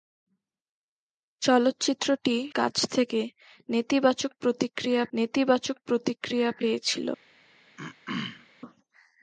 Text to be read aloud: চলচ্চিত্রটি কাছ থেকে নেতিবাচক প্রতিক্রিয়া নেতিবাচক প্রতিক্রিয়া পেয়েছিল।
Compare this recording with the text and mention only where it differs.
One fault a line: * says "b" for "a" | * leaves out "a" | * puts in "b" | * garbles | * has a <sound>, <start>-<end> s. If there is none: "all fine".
* has a throat clearing, 7.8-8.5 s